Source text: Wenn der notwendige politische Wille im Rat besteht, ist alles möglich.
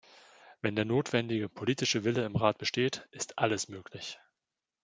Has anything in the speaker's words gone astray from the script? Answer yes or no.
no